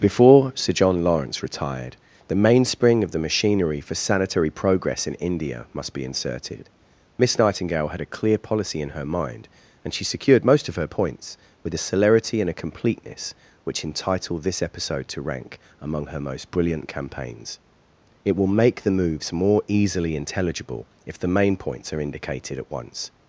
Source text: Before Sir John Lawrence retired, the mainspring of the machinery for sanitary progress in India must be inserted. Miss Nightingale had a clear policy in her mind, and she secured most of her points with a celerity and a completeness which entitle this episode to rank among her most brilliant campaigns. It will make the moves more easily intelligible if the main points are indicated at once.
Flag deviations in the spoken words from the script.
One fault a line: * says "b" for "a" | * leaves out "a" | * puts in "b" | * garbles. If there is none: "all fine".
all fine